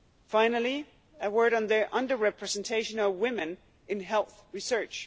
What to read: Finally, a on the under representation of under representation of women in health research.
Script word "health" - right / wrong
right